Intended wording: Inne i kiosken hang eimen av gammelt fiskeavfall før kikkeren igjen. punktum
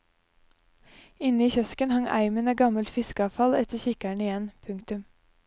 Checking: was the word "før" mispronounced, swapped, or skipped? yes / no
yes